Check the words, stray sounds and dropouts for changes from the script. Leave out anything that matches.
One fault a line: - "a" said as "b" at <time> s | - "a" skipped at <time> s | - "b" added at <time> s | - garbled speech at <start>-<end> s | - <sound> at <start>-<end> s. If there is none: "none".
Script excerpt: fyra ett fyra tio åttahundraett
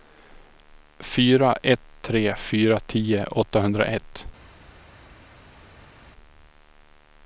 - "tre" added at 2.0 s